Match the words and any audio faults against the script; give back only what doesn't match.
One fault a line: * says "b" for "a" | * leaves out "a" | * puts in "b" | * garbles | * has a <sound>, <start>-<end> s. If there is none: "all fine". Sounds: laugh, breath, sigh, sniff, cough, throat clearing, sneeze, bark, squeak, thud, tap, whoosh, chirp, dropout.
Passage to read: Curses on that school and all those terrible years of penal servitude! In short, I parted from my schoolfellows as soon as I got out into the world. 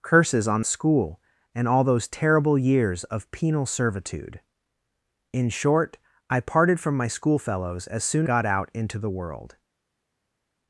* leaves out "that"
* leaves out "as I"